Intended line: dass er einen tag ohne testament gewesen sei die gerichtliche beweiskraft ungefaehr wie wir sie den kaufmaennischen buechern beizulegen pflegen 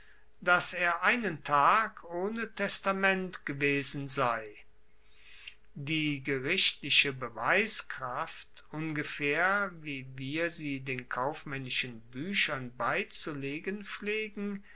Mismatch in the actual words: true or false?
false